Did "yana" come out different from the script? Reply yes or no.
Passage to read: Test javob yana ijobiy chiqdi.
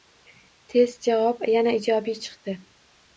no